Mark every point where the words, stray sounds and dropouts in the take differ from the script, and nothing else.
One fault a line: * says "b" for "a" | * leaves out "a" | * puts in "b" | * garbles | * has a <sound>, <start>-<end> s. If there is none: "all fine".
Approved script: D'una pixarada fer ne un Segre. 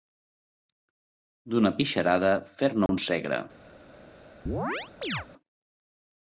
* has a dropout, 2.9-2.9 s
* has a chirp, 4.5-5.3 s